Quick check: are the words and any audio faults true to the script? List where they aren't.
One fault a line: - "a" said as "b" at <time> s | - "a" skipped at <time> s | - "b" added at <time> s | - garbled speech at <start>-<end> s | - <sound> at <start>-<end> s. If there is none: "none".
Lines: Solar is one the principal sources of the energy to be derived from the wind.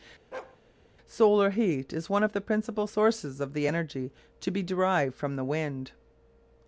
- bark at 0.3-0.6 s
- "heat" added at 1.5 s
- "of" added at 2.2 s